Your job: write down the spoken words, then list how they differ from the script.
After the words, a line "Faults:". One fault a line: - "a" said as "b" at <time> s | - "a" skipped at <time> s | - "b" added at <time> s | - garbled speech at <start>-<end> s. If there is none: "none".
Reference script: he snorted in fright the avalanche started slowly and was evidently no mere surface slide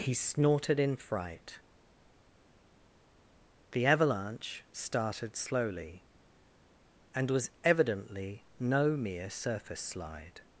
he snorted in fright the avalanche started slowly and was evidently no mere surface slide
Faults:
none